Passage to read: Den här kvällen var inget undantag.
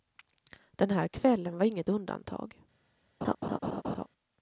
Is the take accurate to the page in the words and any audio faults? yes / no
no